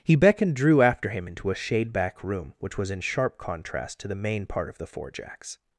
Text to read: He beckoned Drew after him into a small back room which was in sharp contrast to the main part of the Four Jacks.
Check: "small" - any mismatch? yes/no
yes